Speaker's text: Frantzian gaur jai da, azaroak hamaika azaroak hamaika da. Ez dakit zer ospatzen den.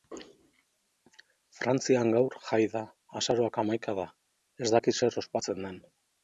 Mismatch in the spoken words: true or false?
true